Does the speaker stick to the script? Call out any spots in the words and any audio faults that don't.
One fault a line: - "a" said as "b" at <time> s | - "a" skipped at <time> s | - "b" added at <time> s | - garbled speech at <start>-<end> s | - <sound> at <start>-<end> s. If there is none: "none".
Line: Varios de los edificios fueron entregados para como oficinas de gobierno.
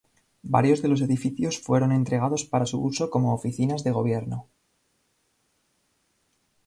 - "su uso" added at 2.6 s